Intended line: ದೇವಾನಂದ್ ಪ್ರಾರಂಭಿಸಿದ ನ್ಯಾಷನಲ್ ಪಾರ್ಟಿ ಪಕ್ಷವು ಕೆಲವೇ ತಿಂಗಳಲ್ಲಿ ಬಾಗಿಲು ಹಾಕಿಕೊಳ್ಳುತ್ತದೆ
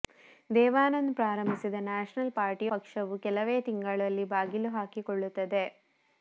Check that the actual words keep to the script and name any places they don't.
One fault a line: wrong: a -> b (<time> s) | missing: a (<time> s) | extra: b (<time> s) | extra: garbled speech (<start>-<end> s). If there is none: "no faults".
no faults